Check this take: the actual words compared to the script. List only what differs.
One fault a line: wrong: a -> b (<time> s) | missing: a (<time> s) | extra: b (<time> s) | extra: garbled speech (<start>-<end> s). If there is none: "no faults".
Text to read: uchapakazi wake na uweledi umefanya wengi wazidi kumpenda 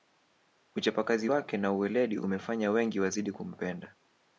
no faults